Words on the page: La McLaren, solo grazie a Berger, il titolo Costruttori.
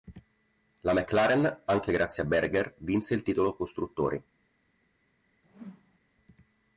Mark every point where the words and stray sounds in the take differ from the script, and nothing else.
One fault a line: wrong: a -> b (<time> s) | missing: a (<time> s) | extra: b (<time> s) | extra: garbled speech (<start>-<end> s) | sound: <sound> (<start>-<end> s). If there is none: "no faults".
wrong: solo -> anche (1.6 s)
extra: vinse (2.8 s)
sound: whoosh (5.4-6.0 s)